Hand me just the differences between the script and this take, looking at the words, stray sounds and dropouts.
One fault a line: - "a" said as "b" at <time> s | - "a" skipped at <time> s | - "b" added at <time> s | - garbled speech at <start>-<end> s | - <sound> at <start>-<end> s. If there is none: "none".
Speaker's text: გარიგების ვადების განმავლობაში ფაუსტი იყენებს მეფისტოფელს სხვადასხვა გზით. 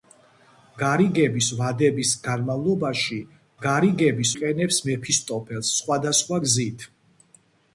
- "ფაუსტი" said as "გარიგების" at 3.7 s